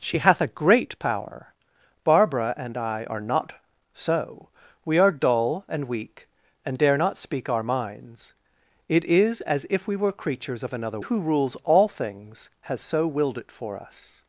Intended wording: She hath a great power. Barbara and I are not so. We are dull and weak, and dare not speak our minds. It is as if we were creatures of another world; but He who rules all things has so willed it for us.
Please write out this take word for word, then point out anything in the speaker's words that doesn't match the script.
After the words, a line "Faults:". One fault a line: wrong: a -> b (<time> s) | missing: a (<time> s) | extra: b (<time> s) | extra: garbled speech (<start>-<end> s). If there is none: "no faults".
She hath a great power. Barbara and I are not so. We are dull and weak, and dare not speak our minds. It is as if we were creatures of another who rules all things has so willed it for us.
Faults:
missing: world but He (11.0 s)